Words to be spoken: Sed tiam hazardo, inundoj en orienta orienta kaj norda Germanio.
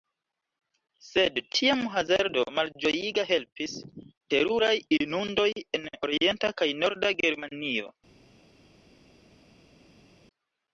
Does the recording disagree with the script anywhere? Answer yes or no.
yes